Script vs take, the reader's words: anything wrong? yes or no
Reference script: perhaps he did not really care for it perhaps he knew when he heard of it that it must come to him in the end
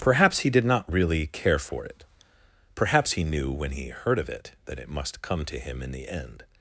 no